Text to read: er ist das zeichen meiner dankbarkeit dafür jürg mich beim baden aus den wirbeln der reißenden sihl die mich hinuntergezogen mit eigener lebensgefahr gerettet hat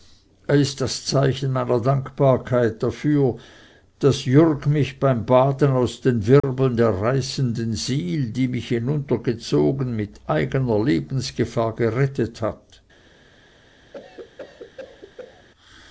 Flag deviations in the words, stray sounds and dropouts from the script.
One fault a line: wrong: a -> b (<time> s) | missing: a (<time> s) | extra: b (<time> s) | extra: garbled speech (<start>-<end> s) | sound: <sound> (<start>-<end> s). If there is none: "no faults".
extra: daß (4.0 s)
sound: dropout (6.4-6.4 s)
sound: cough (13.9-15.5 s)